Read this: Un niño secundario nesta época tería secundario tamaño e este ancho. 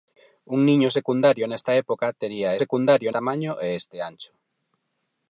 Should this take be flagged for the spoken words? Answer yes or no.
no